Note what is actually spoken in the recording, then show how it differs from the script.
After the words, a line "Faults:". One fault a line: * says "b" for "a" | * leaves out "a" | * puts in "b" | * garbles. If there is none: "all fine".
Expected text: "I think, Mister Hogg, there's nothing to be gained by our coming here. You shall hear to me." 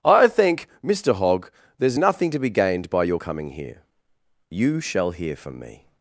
"I think, Mister Hogg, there's nothing to be gained by your coming here. You shall hear from me."
Faults:
* says "your" for "our"
* says "from" for "to"